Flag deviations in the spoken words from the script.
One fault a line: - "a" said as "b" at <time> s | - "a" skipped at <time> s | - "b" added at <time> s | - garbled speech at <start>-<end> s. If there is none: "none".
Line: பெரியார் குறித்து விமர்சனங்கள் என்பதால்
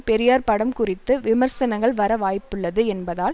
- "படம்" added at 0.5 s
- "வர வாய்ப்புள்ளது" added at 1.9 s